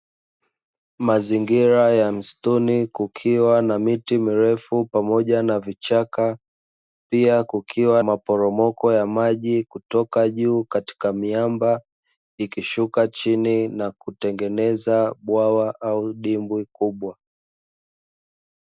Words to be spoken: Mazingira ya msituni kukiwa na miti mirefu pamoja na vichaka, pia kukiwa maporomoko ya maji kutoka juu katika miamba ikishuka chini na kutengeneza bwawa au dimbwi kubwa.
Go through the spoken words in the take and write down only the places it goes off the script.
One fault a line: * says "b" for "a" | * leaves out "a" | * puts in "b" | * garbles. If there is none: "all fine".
all fine